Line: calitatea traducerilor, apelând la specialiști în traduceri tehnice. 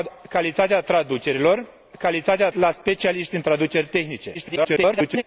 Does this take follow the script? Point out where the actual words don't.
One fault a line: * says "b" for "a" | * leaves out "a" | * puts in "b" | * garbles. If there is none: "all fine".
* says "calitatea" for "apelând"
* garbles